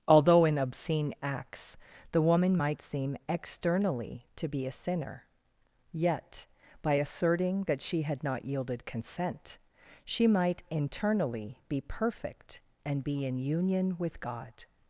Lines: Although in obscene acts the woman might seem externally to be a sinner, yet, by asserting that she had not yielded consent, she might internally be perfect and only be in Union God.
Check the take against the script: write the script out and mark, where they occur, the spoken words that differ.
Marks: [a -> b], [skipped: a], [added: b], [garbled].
Although in obscene acts the woman might seem externally to be a sinner, yet, by asserting that she had not yielded consent, she might internally be perfect and [skipped: only] be in Union [added: with] God.